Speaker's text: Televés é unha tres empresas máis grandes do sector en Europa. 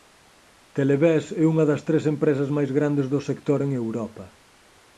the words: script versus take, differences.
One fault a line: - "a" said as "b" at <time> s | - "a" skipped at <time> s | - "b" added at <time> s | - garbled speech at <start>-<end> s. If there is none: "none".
- "das" added at 1.7 s